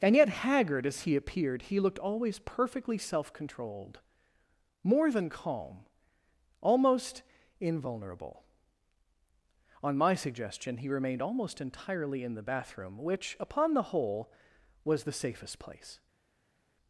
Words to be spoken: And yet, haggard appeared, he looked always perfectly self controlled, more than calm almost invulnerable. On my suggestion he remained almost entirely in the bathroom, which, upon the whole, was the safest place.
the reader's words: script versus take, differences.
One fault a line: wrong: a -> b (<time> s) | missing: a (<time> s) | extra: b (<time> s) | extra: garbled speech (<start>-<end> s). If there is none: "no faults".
extra: as he (0.9 s)